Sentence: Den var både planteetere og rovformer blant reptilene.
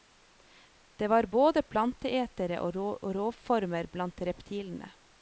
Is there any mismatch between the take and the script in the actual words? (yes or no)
yes